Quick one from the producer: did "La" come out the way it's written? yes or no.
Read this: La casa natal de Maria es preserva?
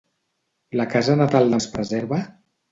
yes